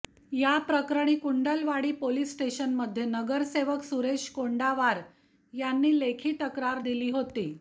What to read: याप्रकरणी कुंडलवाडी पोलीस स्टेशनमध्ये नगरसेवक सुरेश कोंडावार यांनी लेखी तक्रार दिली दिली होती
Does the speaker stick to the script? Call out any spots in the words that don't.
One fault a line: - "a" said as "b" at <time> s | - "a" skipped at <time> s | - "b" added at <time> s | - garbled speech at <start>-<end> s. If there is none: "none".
- "दिली" skipped at 7.1 s